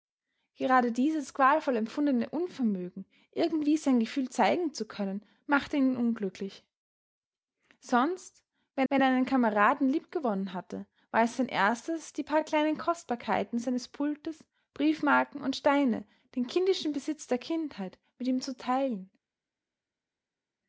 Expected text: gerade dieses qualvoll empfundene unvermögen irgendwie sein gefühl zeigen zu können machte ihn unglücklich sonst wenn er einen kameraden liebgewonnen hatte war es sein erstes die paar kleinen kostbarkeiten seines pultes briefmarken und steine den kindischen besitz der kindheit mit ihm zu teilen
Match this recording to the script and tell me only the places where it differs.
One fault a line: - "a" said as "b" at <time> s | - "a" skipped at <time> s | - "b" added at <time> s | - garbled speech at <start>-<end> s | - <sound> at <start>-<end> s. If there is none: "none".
- "wenn" added at 8.9 s